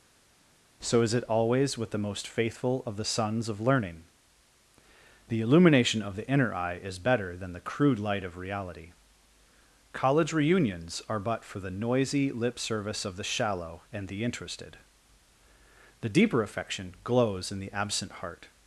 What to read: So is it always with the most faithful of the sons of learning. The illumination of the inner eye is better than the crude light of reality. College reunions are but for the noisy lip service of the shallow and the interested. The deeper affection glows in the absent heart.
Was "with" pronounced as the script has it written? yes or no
yes